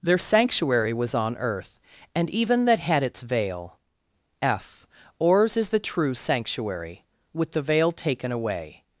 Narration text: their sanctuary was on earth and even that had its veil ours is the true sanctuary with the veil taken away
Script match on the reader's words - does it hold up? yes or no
no